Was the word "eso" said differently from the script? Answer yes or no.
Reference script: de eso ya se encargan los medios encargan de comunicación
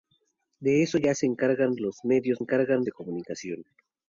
no